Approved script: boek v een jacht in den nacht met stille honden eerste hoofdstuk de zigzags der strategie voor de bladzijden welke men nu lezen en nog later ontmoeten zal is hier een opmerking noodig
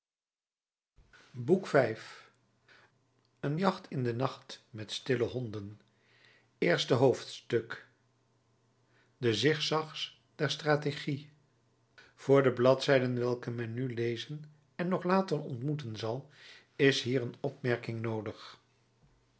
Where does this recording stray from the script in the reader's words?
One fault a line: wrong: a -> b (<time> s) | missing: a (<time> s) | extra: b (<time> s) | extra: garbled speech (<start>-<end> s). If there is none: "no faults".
no faults